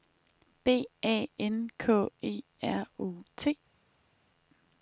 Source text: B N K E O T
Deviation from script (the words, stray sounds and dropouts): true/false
true